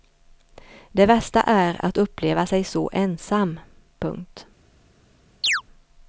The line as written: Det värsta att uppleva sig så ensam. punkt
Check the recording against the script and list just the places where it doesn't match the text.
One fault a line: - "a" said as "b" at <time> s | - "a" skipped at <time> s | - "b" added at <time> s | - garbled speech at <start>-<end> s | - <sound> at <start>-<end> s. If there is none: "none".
- "är" added at 1.4 s
- chirp at 5.4-5.6 s